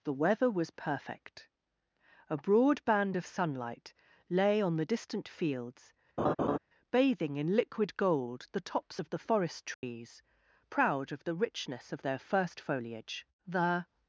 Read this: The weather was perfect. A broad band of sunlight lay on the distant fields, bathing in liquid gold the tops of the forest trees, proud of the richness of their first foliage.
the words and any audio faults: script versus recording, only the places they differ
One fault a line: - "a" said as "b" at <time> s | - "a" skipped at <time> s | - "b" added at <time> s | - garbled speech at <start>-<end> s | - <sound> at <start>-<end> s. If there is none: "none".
- laugh at 6.2-6.6 s
- dropout at 9.7-9.8 s
- "The" added at 13.4 s